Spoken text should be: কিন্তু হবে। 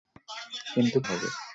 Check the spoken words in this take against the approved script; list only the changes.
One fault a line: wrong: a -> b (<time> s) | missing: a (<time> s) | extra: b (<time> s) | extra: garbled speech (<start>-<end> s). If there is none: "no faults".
no faults